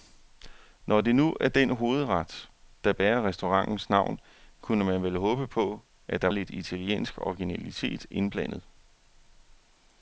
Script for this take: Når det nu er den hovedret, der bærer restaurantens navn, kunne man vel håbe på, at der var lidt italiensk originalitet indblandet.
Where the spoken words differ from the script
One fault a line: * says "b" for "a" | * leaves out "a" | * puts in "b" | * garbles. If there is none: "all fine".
* leaves out "var"